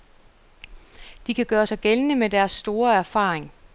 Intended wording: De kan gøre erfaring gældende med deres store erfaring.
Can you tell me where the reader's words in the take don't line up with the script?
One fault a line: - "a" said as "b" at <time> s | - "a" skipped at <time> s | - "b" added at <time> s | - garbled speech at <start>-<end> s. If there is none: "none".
- "erfaring" said as "sig" at 1.6 s